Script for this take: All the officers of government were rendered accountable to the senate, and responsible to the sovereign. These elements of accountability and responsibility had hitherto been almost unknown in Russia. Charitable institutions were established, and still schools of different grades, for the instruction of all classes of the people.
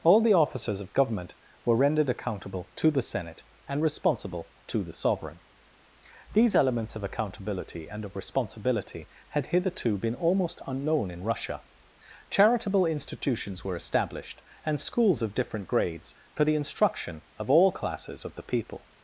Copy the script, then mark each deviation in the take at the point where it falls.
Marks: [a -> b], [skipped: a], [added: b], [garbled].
All the officers of government were rendered accountable to the senate, and responsible to the sovereign. These elements of accountability and [added: of] responsibility had hitherto been almost unknown in Russia. Charitable institutions were established, and [skipped: still] schools of different grades, for the instruction of all classes of the people.